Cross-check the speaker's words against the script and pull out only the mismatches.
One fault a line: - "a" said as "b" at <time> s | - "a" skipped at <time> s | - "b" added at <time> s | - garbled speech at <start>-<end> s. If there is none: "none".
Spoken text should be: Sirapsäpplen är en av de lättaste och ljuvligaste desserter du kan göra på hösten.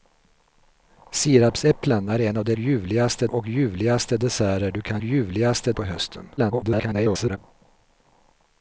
- "lättaste" said as "ljuvligaste" at 2.6 s
- "göra" said as "ljuvligaste" at 5.0 s
- garbled speech at 6.4-7.4 s